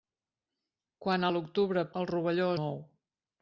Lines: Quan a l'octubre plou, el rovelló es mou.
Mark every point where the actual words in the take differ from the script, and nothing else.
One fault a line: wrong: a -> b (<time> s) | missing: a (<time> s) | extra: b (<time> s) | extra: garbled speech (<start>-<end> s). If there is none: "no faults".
missing: plou (1.8 s)
missing: es (2.5 s)